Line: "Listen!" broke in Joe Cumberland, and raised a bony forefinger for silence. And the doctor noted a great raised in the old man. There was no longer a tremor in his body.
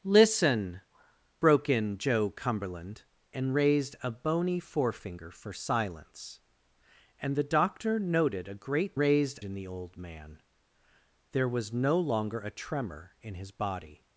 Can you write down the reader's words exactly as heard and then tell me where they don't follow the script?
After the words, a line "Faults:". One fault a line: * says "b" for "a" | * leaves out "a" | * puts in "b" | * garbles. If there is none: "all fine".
"Listen!" broke in Joe Cumberland, and raised a bony forefinger for silence. And the doctor noted a great raised in the old man. There was no longer a tremor in his body.
Faults:
all fine